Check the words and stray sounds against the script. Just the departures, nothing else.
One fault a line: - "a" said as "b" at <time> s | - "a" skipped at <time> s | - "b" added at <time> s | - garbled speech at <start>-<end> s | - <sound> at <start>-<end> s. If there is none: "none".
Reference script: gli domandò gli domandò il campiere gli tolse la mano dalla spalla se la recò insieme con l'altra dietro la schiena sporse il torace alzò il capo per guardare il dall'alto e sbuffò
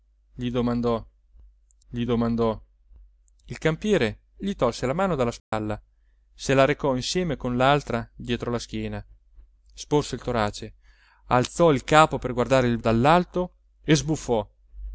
- dropout at 5.4-5.5 s